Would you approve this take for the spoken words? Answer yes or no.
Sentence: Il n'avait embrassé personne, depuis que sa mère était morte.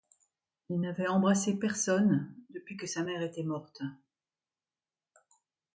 yes